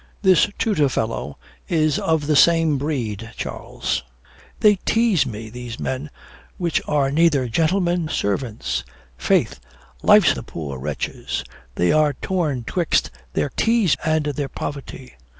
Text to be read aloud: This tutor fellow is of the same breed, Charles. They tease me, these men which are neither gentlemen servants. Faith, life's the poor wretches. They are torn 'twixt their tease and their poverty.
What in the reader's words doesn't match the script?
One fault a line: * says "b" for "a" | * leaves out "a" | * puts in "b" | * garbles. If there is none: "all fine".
all fine